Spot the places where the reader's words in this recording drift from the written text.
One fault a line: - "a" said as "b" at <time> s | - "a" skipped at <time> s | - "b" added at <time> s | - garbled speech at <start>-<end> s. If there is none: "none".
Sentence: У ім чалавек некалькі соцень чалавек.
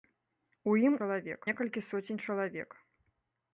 none